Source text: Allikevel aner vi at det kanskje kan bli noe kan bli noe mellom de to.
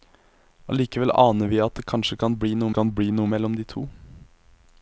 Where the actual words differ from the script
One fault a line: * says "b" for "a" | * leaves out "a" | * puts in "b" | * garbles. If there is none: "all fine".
all fine